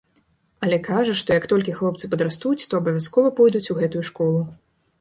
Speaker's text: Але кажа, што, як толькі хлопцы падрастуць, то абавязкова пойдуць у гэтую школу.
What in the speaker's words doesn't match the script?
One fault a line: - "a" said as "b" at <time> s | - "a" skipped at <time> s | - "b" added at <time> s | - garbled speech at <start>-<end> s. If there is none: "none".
none